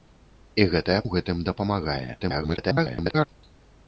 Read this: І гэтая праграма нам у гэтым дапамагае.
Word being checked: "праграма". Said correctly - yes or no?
no